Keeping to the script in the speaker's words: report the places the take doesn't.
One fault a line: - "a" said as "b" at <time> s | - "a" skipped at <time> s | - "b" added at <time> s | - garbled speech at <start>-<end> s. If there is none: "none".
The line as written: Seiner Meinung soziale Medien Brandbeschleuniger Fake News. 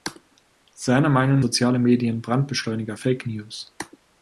none